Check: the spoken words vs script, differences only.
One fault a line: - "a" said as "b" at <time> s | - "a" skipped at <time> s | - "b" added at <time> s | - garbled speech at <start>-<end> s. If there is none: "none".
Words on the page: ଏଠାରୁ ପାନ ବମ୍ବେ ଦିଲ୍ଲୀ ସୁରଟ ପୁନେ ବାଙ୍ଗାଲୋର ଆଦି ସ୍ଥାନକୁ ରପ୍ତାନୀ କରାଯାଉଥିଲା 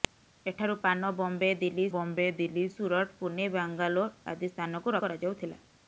- "ବମ୍ବେ ଦିଲ୍ଲୀ" added at 1.9 s
- "ରପ୍ତାନୀ" skipped at 5.0 s